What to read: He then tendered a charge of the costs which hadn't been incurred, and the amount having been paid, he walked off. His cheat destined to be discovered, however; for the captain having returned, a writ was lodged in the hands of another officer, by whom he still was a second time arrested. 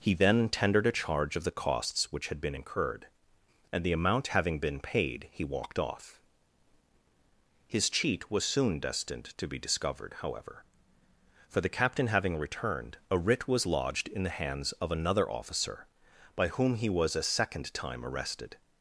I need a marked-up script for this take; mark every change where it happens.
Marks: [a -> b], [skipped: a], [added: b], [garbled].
He then tendered a charge of the costs which [hadn't -> had] been incurred, and the amount having been paid, he walked off. His cheat [added: was soon] destined to be discovered, however; for the captain having returned, a writ was lodged in the hands of another officer, by whom he [skipped: still] was a second time arrested.